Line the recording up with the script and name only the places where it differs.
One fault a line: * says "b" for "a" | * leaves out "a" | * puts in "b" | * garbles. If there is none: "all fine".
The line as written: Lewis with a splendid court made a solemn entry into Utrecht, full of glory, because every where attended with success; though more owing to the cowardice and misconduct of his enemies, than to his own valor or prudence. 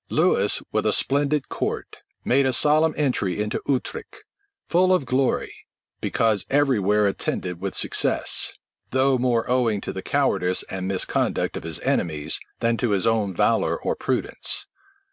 all fine